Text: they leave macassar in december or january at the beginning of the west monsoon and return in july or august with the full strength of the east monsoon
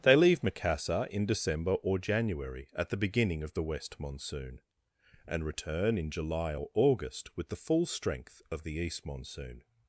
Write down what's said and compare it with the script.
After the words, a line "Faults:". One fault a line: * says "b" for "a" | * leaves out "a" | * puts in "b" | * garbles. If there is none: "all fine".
they leave macassar in december or january at the beginning of the west monsoon and return in july or august with the full strength of the east monsoon
Faults:
all fine